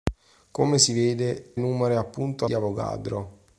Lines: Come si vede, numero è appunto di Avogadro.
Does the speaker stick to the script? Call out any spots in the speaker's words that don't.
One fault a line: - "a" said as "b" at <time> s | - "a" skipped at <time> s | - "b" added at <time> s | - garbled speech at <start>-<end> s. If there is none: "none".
none